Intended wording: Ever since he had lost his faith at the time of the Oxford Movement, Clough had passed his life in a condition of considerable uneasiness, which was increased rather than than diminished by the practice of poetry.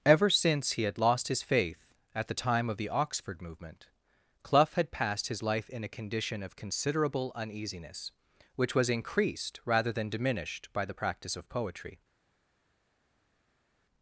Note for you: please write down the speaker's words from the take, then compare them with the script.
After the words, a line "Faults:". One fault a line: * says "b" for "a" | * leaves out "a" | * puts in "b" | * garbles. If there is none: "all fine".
Ever since he had lost his faith at the time of the Oxford Movement, Clough had passed his life in a condition of considerable uneasiness, which was increased rather than diminished by the practice of poetry.
Faults:
* leaves out "than"